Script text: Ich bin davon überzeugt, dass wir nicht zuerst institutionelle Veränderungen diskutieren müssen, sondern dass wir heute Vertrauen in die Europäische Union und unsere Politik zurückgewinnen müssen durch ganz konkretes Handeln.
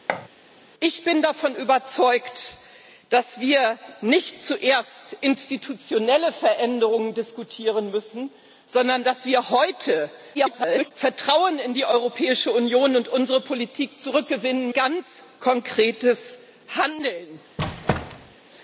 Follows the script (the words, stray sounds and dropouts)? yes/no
no